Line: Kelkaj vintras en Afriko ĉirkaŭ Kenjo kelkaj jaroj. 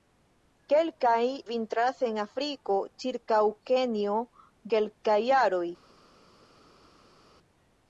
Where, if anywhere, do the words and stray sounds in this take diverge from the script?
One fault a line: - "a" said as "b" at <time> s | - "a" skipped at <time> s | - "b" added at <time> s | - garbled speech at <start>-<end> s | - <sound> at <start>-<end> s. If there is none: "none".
none